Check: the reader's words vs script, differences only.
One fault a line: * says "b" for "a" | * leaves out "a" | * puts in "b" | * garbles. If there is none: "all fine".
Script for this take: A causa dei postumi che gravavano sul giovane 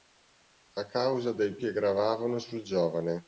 * leaves out "postumi"